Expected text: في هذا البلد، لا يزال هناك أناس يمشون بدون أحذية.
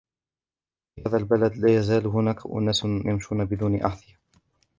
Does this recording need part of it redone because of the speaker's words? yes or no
no